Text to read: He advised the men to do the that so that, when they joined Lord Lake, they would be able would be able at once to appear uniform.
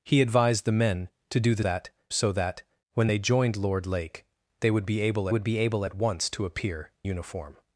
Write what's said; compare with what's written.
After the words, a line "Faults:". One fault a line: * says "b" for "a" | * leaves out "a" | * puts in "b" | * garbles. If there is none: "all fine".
He advised the men to do the that so that, when they joined Lord Lake, they would be able would be able at once to appear uniform.
Faults:
all fine